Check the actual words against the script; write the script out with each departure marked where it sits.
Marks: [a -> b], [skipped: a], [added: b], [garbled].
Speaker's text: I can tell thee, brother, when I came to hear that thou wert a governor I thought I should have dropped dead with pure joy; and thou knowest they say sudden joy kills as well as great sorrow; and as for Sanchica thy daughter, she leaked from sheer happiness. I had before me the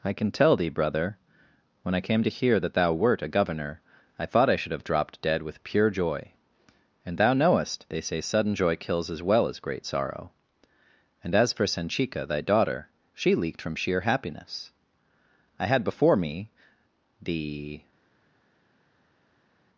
I can tell thee, brother, when I came to hear that thou wert a governor I thought I should have dropped dead with pure joy; and thou knowest they say sudden joy kills as well as great sorrow; and as for Sanchica thy daughter, she leaked from sheer happiness. I had before me the